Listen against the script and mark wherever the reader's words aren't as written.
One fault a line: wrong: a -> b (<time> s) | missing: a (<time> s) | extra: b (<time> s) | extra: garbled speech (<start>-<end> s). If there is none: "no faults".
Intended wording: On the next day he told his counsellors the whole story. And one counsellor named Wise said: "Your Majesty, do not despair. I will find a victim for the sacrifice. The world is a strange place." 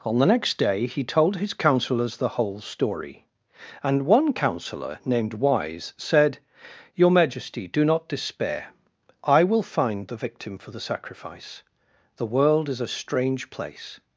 wrong: a -> the (10.1 s)